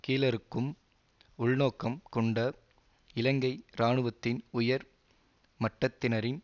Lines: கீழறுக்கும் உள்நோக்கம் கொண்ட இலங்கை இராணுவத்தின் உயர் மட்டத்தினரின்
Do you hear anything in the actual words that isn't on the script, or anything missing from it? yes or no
no